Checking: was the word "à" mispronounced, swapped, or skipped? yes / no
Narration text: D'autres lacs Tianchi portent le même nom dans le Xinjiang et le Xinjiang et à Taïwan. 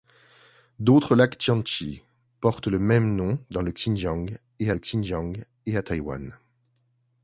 no